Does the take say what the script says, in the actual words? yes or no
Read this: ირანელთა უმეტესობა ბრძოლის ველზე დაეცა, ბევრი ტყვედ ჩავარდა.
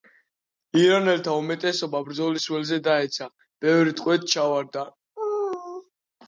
yes